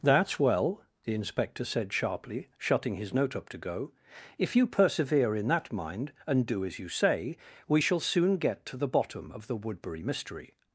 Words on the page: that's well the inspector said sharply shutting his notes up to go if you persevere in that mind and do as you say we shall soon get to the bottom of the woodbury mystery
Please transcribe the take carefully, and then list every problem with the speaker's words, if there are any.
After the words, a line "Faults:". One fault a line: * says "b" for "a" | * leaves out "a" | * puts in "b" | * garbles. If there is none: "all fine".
that's well the inspector said sharply shutting his note up to go if you persevere in that mind and do as you say we shall soon get to the bottom of the woodbury mystery
Faults:
* says "note" for "notes"